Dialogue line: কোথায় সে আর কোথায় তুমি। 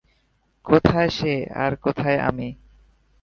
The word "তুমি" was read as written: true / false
false